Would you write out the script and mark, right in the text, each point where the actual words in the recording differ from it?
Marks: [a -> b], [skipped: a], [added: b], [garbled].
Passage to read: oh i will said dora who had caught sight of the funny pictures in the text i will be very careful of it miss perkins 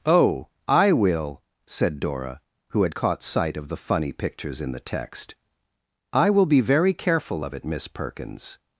oh i will said dora who had caught sight of the funny pictures in the text i will be very careful of it miss perkins